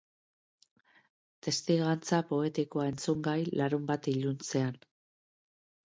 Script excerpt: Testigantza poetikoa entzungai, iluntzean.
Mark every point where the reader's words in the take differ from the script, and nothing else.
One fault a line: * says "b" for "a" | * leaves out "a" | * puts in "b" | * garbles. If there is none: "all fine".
* puts in "larunbat"